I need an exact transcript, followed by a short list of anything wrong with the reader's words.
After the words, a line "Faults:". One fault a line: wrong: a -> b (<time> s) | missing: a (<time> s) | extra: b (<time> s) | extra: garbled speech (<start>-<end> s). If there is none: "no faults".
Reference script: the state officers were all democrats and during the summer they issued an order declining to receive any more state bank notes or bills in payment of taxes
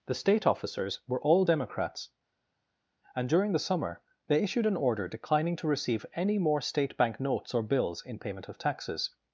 the state officers were all democrats and during the summer they issued an order declining to receive any more state bank notes or bills in payment of taxes
Faults:
no faults